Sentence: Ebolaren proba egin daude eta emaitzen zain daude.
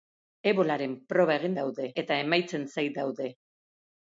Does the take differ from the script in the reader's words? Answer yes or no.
no